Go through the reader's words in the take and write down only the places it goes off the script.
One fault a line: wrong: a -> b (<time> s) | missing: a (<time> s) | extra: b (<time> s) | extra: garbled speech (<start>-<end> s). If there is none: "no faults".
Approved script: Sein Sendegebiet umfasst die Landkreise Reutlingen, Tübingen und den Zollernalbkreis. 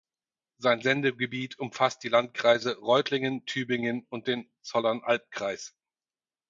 no faults